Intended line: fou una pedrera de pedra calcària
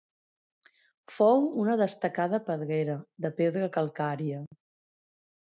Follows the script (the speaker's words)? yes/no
no